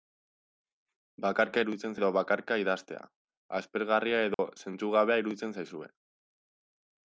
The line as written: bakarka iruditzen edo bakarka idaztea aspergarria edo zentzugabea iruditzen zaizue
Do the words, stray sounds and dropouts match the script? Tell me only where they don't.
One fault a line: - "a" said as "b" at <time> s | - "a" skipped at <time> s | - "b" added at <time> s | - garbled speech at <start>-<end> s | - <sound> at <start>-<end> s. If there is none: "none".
- dropout at 4.3-4.4 s